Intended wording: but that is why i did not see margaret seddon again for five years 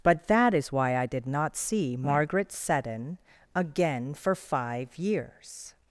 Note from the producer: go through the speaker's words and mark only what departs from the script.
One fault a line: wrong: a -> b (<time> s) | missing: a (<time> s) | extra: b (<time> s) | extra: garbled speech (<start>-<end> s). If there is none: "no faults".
no faults